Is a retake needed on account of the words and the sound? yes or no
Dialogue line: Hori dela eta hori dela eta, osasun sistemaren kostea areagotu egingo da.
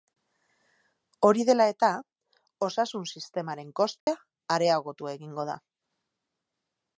yes